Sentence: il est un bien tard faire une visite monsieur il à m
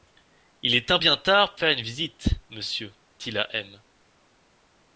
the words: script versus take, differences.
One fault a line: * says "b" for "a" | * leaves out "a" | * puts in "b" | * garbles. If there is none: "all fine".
all fine